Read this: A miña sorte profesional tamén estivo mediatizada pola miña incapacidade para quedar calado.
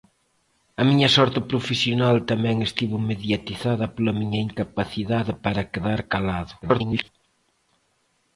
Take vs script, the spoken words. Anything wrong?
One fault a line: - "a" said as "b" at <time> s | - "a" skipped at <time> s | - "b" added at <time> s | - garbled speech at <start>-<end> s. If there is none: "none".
- garbled speech at 6.6-7.1 s